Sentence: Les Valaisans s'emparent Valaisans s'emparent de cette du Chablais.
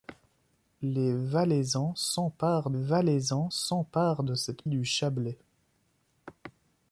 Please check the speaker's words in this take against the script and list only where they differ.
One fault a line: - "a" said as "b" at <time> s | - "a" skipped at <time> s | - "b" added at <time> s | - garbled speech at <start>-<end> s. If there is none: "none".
none